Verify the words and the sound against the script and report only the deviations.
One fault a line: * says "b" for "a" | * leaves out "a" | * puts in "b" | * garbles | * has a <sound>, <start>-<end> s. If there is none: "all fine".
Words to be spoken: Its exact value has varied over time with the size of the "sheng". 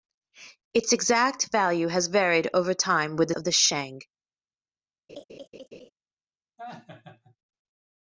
* leaves out "size"
* has a laugh, 5.1-5.9 s
* has a laugh, 6.6-7.4 s